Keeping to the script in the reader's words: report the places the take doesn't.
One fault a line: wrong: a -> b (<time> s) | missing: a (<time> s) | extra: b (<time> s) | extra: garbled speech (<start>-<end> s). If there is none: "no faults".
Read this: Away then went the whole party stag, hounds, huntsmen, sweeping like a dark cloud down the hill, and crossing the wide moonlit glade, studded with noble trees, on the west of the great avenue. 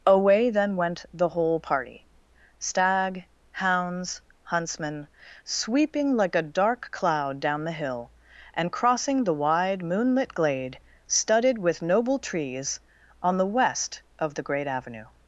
no faults